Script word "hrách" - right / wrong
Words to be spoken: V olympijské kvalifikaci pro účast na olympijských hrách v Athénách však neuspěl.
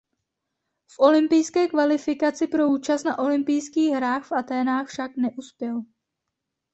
right